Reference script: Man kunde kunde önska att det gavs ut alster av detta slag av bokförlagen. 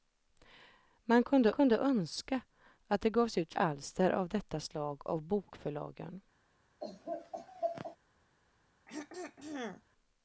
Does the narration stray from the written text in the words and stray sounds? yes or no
yes